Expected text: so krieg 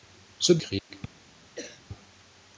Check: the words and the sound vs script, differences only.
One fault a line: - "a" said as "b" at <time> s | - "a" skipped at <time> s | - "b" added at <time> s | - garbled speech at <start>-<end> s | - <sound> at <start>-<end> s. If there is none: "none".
- dropout at 0.8-0.9 s
- cough at 1.6-1.8 s